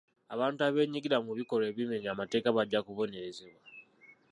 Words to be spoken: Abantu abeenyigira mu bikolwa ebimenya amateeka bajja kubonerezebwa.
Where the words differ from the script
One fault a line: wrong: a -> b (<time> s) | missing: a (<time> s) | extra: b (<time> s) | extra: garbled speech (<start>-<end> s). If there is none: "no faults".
no faults